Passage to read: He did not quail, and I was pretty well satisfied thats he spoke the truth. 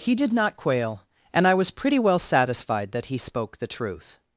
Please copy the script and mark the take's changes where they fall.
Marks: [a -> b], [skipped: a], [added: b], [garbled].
He did not quail, and I was pretty well satisfied [thats -> that] he spoke the truth.